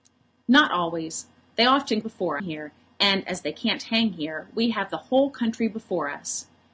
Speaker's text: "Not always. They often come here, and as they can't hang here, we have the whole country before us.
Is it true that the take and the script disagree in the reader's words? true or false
true